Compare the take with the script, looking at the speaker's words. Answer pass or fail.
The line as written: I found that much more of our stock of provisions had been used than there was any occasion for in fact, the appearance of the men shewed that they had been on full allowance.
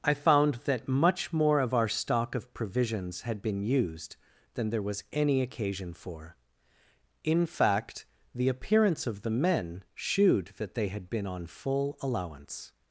pass